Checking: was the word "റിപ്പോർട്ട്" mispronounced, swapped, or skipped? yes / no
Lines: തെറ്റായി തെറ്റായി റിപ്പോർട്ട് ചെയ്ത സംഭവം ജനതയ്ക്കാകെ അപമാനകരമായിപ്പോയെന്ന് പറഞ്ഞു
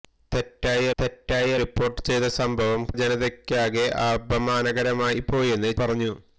no